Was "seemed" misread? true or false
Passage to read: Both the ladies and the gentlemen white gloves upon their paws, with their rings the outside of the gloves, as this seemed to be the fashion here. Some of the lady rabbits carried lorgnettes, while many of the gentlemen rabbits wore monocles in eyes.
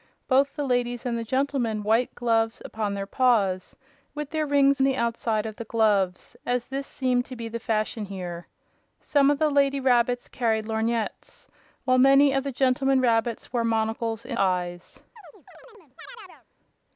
false